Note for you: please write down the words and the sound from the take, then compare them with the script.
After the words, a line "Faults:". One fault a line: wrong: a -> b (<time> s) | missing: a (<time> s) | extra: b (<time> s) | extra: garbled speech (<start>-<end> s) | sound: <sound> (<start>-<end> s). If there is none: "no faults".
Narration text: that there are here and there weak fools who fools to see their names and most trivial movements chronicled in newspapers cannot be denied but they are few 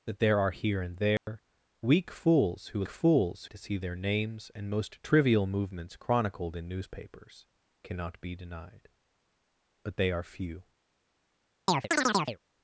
that there are here and there weak fools who fools to see their names and most trivial movements chronicled in newspapers cannot be denied but they are few
Faults:
sound: dropout (1.2-1.3 s)
sound: chirp (11.7-12.4 s)